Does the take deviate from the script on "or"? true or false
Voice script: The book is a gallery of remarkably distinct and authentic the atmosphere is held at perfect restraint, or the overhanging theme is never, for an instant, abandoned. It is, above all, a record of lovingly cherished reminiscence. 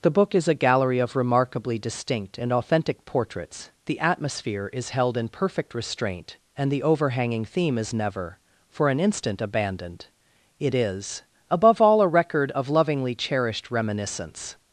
true